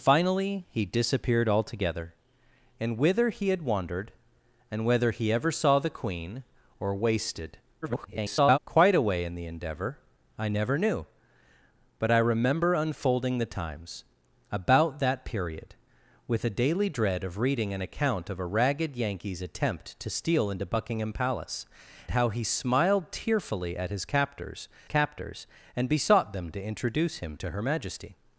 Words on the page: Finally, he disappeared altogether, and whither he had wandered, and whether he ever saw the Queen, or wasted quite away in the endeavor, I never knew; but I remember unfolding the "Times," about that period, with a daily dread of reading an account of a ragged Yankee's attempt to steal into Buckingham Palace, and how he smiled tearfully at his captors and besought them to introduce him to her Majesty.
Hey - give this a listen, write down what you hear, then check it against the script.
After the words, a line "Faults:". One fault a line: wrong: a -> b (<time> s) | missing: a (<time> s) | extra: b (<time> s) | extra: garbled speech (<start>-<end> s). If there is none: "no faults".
Finally, he disappeared altogether, and whither he had wandered, and whether he ever saw the Queen, or wasted [garbled] quite away in the endeavor, I never knew; but I remember unfolding the "Times," about that period, with a daily dread of reading an account of a ragged Yankee's attempt to steal into Buckingham Palace, how he smiled tearfully at his captors captors and besought them to introduce him to her Majesty.
Faults:
extra: garbled speech (7.8-8.6 s)
missing: and (21.6 s)
extra: captors (24.9 s)